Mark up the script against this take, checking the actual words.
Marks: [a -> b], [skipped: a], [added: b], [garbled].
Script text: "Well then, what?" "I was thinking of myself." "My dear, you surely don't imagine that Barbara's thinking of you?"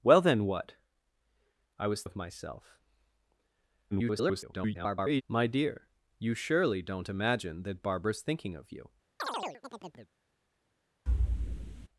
"Well then, what?" "I was [skipped: thinking] of myself." [garbled] "My dear, you surely don't imagine that Barbara's thinking of you?"